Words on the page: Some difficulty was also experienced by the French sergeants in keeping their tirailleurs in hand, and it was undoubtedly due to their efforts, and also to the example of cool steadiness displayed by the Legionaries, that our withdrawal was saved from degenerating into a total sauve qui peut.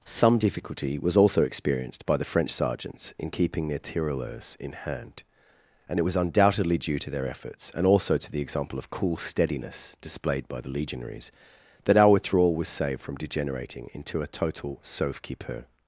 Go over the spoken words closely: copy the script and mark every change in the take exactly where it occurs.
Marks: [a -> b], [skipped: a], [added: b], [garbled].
Some difficulty was also experienced by the French sergeants in keeping their tirailleurs in hand, and it was undoubtedly due to their efforts, and also to the example of cool steadiness displayed by the Legionaries, that our withdrawal was saved from degenerating into a total sauve qui peut.